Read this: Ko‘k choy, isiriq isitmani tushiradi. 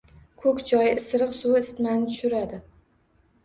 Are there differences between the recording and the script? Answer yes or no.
yes